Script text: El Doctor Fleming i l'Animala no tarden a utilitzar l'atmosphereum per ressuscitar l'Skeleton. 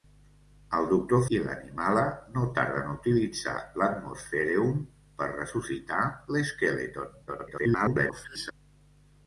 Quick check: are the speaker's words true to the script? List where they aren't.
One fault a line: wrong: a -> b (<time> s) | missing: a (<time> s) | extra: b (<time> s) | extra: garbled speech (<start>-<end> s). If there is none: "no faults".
missing: Fleming (1.2 s)
extra: garbled speech (7.3-8.5 s)